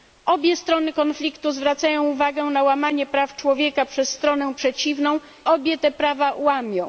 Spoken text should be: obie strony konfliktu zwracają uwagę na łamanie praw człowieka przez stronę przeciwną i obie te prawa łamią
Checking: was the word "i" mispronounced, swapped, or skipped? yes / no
yes